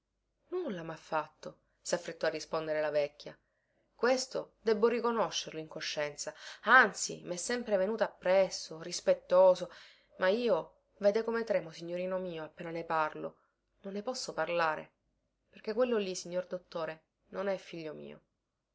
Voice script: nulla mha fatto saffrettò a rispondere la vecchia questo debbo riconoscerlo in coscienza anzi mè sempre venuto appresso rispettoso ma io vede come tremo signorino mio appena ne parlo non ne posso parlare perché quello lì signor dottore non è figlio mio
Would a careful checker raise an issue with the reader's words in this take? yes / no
no